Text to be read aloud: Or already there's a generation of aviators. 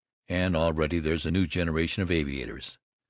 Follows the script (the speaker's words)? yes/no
no